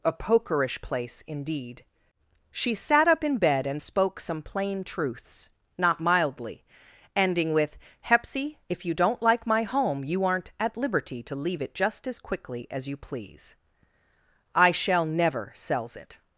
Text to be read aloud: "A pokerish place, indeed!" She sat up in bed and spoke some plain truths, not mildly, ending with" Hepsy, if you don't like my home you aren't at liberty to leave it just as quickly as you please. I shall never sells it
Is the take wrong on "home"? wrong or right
right